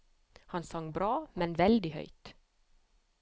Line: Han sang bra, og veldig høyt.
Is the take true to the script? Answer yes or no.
no